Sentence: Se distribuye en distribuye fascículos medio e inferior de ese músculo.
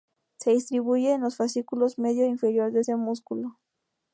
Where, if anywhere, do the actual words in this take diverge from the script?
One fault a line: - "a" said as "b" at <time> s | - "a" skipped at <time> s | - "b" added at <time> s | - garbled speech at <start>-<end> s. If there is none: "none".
- "distribuye" said as "los" at 1.2 s